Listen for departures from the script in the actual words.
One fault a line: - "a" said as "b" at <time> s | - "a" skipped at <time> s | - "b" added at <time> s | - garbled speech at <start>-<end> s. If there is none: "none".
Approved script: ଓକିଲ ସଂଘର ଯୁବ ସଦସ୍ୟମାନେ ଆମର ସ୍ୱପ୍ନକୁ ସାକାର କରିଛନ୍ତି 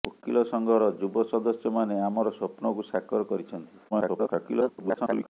- garbled speech at 3.9-5.3 s